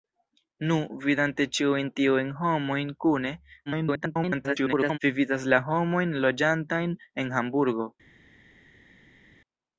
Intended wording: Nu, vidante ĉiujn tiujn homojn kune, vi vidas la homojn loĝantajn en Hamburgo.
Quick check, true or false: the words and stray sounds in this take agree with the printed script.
false